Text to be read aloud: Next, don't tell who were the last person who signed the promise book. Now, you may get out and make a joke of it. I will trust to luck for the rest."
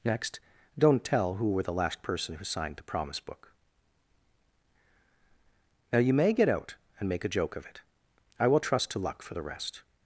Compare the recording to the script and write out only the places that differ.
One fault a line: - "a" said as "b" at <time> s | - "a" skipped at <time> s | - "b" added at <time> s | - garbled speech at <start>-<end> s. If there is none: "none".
none